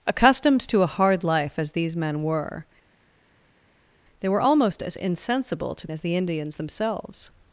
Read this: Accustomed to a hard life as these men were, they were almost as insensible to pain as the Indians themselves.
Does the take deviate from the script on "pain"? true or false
true